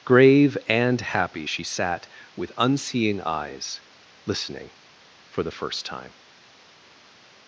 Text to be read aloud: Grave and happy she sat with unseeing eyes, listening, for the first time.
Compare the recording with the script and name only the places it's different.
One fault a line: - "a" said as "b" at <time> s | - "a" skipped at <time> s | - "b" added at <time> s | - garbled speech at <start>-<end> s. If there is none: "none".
none